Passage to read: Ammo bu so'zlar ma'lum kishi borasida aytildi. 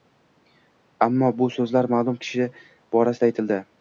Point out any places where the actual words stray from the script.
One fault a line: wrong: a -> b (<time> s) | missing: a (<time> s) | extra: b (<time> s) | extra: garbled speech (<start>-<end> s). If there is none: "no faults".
no faults